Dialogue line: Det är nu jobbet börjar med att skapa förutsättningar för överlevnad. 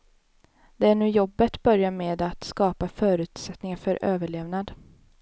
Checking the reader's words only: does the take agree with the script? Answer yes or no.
yes